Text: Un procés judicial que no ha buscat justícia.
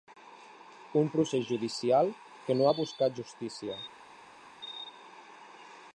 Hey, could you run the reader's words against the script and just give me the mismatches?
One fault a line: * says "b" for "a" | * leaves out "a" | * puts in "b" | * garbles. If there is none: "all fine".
all fine